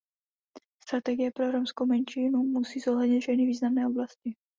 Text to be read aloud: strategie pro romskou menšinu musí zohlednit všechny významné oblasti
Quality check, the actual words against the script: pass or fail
pass